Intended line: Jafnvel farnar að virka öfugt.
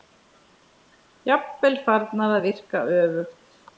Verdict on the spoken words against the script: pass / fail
pass